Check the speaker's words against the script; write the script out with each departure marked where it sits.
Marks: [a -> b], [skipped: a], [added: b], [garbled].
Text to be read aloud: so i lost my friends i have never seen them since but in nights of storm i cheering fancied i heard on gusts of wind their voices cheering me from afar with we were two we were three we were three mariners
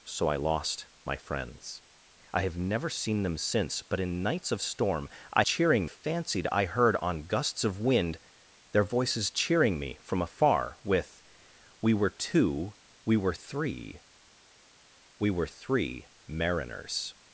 so i lost my friends i have never seen them since but in nights of storm i cheering fancied i heard on gusts of wind their voices cheering me from afar with we were two we were three we were three mariners